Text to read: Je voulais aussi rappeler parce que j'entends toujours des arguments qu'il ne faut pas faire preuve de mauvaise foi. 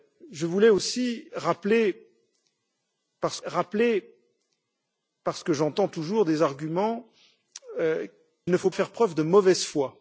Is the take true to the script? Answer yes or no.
no